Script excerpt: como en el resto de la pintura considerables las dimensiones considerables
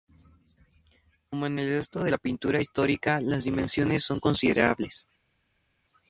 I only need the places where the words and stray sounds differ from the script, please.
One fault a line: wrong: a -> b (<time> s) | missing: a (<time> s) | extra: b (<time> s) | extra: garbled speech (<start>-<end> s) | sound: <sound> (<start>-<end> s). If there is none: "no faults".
wrong: considerables -> histórica (2.6 s)
extra: son (4.0 s)